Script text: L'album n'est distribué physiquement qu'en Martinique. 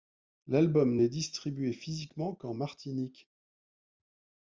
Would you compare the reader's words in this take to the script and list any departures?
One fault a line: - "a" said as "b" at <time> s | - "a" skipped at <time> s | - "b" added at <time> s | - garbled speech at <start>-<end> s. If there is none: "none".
none